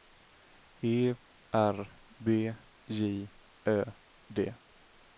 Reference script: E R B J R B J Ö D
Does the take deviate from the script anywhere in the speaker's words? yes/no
yes